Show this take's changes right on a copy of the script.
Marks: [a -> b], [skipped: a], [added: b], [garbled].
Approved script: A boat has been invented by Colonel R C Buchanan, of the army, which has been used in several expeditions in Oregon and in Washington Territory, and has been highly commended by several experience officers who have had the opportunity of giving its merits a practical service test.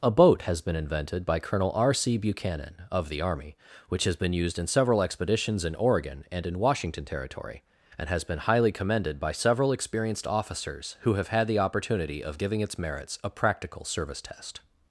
A boat has been invented by Colonel R C Buchanan, of the army, which has been used in several expeditions in Oregon and in Washington Territory, and has been highly commended by several [experience -> experienced] officers who have had the opportunity of giving its merits a practical service test.